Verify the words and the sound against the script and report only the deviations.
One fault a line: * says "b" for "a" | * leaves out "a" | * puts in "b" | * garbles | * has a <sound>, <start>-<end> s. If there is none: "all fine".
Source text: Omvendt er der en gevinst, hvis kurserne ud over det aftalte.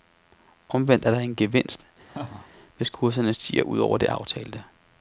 * has a laugh, 2.1-2.5 s
* puts in "stiger"